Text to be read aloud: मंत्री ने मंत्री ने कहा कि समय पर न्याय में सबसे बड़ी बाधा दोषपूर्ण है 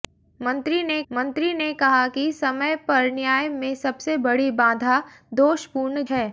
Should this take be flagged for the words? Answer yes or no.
no